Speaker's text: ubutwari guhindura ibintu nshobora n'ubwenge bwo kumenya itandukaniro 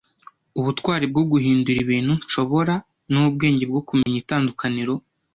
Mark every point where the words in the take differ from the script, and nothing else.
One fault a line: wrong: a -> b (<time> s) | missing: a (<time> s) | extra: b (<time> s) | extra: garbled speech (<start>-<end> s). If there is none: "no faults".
extra: bwo (1.1 s)